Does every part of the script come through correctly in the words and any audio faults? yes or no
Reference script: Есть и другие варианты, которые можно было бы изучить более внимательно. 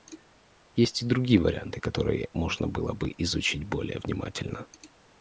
yes